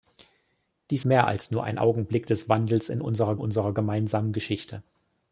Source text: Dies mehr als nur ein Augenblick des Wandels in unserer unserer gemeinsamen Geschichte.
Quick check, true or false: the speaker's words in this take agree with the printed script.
true